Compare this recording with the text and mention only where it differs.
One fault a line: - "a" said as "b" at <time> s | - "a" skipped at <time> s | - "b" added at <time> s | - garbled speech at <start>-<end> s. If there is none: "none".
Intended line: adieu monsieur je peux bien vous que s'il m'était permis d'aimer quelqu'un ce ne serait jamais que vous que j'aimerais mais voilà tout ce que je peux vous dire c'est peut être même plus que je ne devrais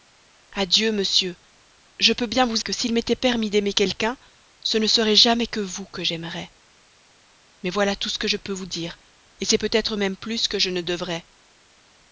none